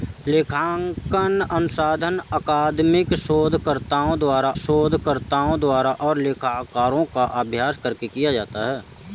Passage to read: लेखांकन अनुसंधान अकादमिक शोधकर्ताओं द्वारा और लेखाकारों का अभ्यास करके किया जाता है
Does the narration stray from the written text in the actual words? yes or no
yes